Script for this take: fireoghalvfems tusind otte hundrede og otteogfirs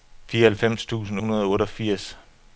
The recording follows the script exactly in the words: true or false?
false